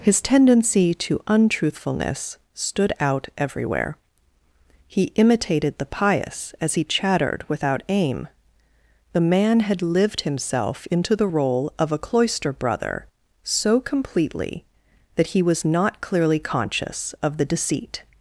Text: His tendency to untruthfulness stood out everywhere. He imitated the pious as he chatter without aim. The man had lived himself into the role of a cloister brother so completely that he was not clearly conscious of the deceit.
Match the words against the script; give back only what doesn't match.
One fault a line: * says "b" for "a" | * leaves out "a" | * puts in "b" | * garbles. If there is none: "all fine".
* says "chattered" for "chatter"